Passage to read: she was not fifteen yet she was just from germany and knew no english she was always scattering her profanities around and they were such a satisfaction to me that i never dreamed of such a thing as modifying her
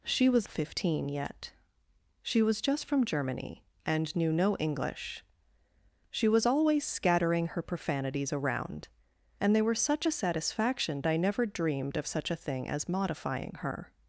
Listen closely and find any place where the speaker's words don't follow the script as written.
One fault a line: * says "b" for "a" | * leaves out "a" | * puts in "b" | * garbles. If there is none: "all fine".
* leaves out "not"
* leaves out "to me that"